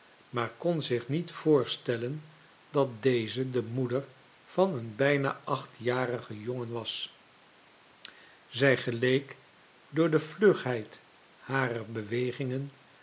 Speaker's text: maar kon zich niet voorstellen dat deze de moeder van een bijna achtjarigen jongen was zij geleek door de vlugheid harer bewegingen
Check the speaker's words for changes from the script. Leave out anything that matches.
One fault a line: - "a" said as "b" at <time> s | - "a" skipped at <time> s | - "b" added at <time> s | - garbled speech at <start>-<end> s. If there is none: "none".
none